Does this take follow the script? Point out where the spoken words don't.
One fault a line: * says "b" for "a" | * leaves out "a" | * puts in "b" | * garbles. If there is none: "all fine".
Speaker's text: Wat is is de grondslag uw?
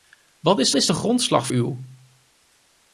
all fine